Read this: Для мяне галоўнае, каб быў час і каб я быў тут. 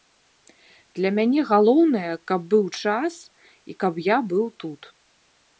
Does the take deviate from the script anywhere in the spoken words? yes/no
no